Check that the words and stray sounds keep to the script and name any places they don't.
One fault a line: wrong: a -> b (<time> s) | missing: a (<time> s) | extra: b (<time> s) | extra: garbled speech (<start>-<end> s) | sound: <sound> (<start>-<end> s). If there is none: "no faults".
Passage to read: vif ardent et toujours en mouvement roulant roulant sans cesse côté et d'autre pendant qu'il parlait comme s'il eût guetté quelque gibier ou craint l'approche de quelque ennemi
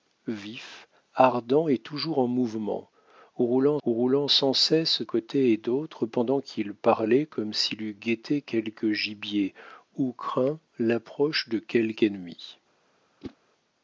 sound: whoosh (13.2-13.4 s)